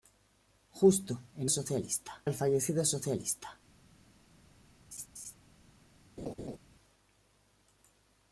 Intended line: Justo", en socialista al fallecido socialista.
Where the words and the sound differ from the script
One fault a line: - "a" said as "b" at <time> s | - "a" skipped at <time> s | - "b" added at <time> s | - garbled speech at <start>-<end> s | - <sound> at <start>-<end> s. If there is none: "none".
- laugh at 4.9-5.3 s
- laugh at 6.2-6.6 s